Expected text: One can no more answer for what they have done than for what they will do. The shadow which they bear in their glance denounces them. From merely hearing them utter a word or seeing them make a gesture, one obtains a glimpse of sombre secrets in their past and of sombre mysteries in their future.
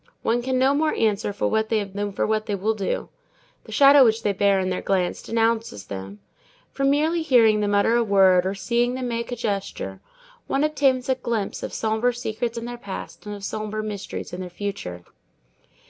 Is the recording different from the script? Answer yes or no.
yes